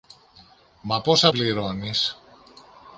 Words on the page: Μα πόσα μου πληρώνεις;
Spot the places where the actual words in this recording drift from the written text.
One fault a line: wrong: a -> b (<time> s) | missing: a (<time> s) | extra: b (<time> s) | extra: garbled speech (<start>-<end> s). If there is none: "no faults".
missing: μου (1.3 s)